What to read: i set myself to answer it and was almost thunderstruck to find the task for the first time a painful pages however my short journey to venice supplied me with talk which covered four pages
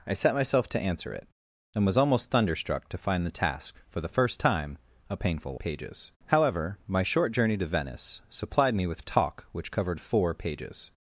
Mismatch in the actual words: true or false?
false